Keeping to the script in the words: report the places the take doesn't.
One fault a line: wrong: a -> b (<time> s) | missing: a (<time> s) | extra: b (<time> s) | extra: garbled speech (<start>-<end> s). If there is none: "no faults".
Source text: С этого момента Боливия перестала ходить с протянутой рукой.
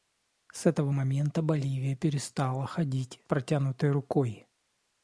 missing: с (3.2 s)